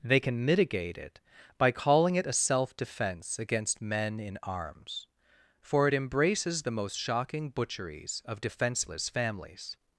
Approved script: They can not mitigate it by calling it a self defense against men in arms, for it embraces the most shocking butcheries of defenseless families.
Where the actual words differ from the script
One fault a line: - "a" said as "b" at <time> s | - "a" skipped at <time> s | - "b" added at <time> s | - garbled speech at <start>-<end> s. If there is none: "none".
- "not" skipped at 0.5 s